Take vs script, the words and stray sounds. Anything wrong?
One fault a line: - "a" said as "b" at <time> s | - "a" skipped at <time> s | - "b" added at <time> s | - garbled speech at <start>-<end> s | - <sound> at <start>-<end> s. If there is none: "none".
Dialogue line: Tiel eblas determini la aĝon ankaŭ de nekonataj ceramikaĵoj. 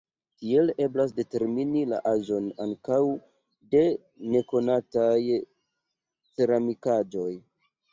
none